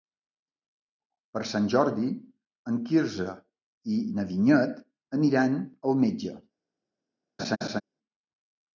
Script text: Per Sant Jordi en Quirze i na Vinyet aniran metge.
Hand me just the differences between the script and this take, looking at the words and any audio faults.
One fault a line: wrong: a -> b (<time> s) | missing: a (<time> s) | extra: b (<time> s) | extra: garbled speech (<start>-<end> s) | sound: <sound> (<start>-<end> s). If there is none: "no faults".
extra: al (5.7 s)
sound: laugh (7.4-7.8 s)